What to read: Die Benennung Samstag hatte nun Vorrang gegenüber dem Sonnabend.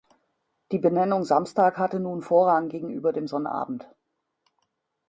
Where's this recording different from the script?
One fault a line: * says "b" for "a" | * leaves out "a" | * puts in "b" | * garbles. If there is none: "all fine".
all fine